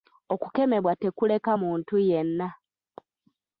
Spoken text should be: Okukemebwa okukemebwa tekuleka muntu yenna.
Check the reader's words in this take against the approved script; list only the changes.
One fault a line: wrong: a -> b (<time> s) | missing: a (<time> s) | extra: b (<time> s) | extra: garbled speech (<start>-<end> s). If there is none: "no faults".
missing: okukemebwa (0.9 s)